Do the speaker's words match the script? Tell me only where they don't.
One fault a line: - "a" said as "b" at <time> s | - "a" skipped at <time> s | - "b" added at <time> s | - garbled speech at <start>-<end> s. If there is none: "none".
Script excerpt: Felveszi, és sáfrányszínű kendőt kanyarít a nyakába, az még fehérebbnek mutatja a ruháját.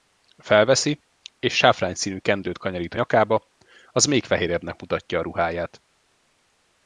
none